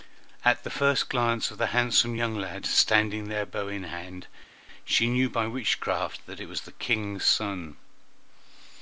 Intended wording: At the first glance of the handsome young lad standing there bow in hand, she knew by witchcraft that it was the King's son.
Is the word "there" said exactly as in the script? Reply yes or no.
yes